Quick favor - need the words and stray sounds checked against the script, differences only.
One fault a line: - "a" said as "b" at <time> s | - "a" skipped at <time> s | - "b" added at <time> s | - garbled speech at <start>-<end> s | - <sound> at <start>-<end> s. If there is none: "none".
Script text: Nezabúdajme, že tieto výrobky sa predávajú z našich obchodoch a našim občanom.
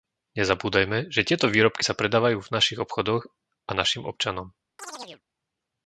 - "z" said as "v" at 2.4 s
- chirp at 4.8-5.2 s